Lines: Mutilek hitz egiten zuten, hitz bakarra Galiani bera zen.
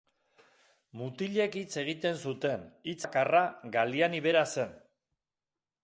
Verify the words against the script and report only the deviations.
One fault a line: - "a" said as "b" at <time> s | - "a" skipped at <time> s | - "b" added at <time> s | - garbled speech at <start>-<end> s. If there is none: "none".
none